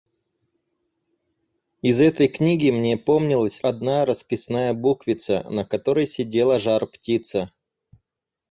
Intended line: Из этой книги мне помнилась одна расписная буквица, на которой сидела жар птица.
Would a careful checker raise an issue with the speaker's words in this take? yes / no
no